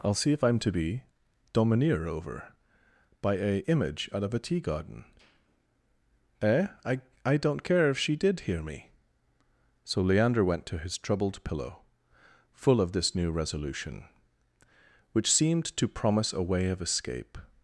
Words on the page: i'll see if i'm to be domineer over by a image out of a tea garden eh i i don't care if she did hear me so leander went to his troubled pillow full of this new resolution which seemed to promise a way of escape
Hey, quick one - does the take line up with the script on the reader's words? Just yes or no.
yes